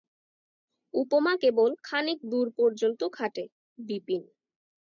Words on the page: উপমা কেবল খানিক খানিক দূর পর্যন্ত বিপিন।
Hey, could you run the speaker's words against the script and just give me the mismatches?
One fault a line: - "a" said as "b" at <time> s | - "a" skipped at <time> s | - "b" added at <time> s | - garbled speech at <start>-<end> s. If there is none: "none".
- "খানিক" skipped at 2.2 s
- "খাটে" added at 3.1 s